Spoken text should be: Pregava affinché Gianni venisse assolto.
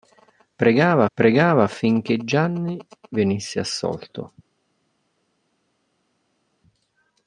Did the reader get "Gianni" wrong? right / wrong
right